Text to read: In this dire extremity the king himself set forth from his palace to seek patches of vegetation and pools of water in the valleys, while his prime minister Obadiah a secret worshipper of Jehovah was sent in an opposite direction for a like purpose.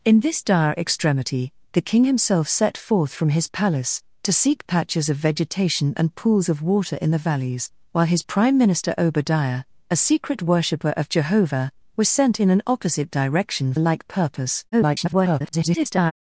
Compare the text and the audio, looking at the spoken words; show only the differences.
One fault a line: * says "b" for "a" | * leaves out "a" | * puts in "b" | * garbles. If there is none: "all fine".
* leaves out "for"
* garbles